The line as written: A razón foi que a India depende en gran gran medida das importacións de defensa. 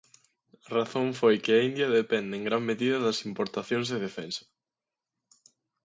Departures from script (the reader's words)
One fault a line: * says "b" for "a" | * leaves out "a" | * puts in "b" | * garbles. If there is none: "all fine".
* leaves out "gran"